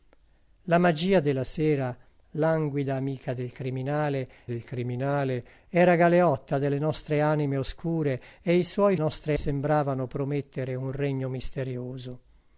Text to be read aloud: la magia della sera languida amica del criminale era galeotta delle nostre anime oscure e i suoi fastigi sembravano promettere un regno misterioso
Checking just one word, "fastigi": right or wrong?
wrong